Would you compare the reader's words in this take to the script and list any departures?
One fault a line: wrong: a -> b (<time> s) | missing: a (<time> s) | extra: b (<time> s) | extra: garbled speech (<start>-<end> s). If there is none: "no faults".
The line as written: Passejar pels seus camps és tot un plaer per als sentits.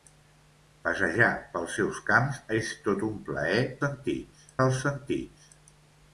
wrong: per -> sentits (3.9 s)